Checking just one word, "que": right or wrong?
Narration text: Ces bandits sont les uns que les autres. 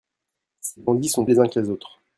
right